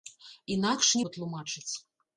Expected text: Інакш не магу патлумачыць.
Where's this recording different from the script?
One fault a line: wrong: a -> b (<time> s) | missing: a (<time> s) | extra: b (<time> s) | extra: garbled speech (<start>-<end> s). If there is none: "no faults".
missing: магу (1.0 s)